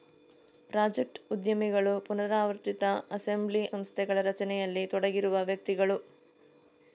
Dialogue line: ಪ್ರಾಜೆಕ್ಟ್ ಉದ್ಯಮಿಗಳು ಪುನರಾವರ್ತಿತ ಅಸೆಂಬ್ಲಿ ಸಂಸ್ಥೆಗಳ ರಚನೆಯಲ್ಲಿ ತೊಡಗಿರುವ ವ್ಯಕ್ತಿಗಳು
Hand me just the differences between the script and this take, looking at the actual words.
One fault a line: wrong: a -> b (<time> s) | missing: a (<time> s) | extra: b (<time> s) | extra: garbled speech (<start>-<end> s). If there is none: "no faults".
no faults